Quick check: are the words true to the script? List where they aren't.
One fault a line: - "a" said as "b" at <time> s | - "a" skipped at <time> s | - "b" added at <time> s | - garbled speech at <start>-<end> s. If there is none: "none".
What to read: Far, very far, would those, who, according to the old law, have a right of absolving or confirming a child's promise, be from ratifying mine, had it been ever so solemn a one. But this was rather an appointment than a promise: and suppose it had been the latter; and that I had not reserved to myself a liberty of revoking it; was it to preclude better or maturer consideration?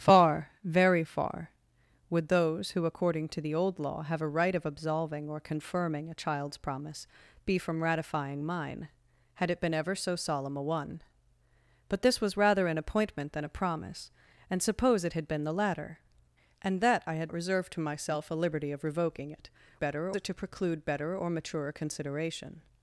- "not" skipped at 17.3 s
- "was" said as "better" at 19.8 s